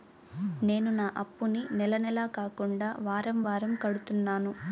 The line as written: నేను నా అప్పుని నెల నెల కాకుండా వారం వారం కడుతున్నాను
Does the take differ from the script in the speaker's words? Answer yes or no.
no